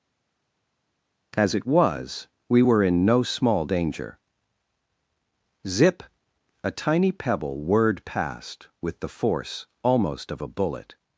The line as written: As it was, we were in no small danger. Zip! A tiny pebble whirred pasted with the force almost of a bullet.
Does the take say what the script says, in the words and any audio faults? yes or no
no